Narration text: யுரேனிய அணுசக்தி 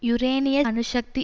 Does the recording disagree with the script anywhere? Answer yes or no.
no